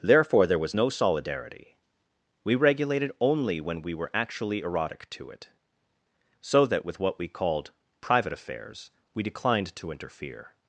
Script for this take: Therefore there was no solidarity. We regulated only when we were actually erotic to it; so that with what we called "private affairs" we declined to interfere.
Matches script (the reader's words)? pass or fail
pass